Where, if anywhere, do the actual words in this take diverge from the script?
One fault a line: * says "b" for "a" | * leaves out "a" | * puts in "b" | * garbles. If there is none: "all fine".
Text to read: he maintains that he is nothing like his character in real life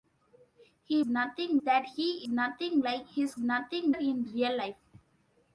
* says "nothing" for "maintains"
* leaves out "is"
* says "nothing" for "character"